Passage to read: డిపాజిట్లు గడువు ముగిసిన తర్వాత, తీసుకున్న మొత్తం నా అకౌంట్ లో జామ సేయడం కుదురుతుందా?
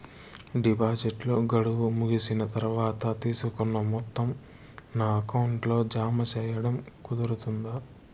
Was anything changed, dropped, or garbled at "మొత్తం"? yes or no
no